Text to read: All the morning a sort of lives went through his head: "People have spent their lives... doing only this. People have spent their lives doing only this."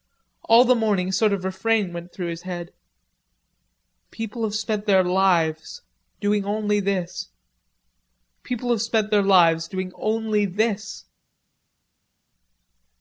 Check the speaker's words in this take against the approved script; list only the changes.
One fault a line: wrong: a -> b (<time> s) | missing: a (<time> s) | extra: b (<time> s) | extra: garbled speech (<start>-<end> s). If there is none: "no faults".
wrong: lives -> refrain (1.4 s)